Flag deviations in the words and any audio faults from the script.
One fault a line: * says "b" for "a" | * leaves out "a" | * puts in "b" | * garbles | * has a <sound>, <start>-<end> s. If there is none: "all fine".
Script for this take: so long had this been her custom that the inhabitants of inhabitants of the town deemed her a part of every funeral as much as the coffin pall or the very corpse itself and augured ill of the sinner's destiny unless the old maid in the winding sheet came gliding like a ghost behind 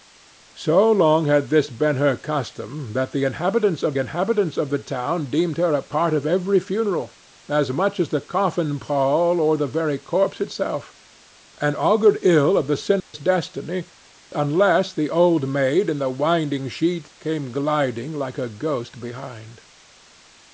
* has a dropout, 13.0-13.1 s